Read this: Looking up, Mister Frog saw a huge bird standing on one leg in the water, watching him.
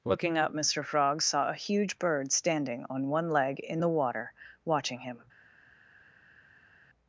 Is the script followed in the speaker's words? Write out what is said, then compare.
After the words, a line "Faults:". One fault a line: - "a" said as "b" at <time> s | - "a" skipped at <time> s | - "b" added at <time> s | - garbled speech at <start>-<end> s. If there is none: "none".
Looking up, Mister Frog saw a huge bird standing on one leg in the water, watching him.
Faults:
none